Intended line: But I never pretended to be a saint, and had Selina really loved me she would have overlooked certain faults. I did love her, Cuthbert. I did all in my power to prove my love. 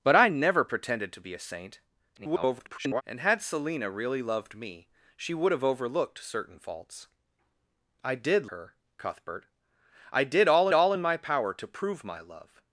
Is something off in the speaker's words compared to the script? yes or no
yes